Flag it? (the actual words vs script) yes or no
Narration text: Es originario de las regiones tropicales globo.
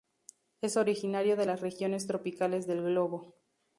yes